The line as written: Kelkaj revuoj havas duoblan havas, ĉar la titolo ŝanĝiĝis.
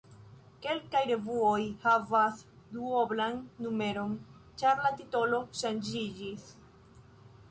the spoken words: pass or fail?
fail